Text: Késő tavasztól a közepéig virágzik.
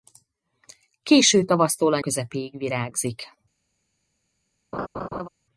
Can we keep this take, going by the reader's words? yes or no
yes